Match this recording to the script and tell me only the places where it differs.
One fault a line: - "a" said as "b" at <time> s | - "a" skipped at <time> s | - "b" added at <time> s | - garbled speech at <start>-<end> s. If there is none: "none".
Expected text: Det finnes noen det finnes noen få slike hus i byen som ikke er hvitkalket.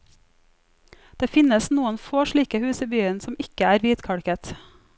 - "det finnes noen" skipped at 2.0 s